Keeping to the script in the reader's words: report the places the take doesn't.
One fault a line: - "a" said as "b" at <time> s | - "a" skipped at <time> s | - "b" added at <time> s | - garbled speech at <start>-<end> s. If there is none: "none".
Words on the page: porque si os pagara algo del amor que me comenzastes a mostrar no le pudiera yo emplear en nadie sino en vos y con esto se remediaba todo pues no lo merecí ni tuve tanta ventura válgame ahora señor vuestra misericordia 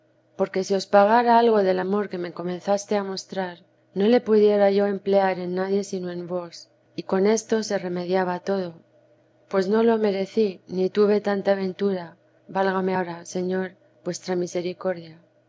none